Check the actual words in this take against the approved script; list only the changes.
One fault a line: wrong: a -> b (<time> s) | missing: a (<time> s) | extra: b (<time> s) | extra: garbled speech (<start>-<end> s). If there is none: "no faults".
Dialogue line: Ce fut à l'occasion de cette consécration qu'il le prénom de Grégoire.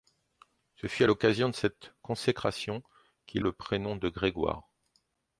no faults